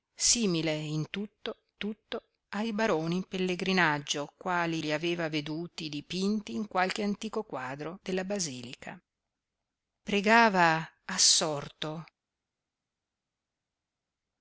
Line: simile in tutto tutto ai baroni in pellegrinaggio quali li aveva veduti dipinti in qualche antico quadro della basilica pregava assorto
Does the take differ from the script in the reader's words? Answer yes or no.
no